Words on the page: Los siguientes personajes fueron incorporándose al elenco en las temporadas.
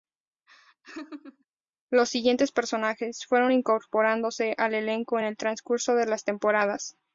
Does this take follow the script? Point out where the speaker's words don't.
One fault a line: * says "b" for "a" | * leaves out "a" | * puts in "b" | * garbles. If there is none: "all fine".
* puts in "el transcurso de"